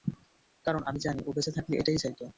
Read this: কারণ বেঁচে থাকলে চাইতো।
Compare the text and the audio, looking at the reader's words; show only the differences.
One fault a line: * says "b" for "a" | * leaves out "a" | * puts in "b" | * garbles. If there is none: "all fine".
* puts in "আমি জানি ও"
* puts in "এটাই"